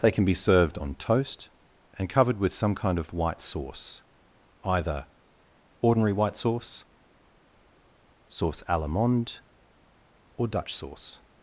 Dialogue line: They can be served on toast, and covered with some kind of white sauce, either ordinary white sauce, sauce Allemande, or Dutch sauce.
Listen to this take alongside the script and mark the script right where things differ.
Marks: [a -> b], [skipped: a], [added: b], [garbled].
They can be served on toast, and covered with some kind of white sauce, either ordinary white sauce, sauce Allemande, or Dutch sauce.